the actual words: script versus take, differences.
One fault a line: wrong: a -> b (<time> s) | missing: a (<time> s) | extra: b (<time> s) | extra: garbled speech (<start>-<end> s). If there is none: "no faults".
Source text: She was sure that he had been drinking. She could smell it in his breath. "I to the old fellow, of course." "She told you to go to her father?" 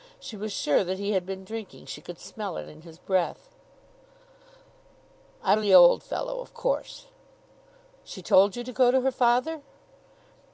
no faults